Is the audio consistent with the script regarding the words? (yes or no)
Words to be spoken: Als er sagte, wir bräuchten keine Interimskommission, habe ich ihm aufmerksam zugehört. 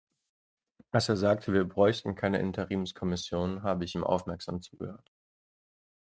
yes